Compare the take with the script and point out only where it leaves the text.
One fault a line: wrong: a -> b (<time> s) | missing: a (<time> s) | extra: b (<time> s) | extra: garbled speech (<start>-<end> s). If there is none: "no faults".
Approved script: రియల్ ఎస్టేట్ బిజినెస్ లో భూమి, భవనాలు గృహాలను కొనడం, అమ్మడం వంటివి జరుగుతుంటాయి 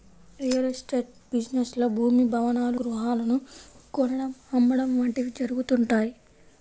no faults